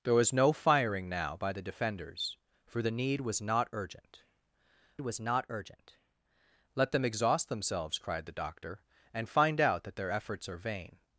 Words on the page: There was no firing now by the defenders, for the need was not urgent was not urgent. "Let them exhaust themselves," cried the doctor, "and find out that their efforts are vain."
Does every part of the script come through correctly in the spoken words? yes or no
yes